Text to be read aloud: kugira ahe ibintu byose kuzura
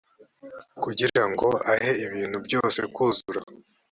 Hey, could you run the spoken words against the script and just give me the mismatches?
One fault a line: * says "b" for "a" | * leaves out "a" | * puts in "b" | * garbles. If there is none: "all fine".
* puts in "ngo"